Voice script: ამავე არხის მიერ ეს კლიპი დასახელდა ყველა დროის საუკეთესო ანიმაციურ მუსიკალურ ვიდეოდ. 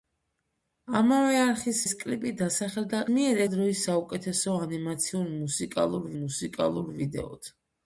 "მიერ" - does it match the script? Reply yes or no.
no